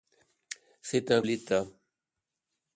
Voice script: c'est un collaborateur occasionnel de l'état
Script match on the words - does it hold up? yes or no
no